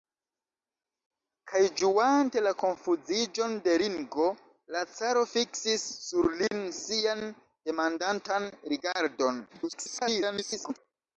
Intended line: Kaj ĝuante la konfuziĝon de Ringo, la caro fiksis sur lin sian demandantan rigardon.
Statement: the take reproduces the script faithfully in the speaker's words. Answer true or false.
false